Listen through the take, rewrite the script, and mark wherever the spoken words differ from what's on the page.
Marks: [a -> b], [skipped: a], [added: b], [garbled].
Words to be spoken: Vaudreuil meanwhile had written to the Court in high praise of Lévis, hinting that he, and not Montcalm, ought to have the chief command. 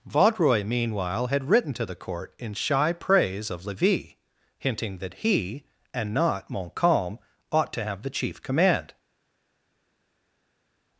Vaudreuil meanwhile had written to the Court in [high -> shy] praise of Lévis, hinting that he, and not Montcalm, ought to have the chief command.